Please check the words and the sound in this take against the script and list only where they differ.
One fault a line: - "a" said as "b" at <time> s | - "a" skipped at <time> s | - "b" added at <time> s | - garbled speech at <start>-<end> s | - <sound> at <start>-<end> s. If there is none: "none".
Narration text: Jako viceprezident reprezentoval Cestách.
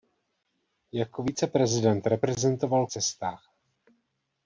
none